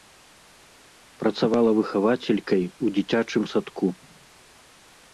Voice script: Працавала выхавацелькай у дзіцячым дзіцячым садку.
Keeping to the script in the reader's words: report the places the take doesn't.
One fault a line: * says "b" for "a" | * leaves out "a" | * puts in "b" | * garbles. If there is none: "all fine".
* leaves out "дзіцячым"